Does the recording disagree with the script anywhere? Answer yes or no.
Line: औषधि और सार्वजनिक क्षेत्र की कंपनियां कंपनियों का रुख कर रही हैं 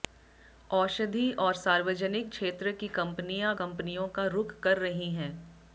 no